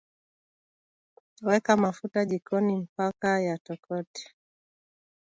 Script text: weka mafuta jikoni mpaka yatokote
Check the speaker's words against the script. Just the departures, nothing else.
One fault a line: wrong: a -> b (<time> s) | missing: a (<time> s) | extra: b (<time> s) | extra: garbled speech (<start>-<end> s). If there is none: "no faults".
no faults